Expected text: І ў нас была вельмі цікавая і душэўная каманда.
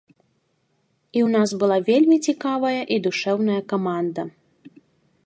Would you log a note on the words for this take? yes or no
no